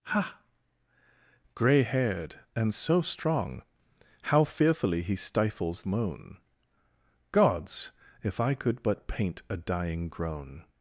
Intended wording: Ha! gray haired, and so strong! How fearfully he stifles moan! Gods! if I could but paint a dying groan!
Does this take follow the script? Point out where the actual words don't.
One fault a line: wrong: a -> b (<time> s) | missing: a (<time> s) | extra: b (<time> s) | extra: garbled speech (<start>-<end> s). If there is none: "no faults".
no faults